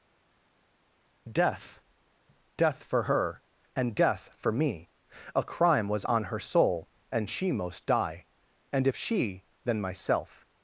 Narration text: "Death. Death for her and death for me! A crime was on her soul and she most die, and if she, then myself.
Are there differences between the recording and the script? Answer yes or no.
no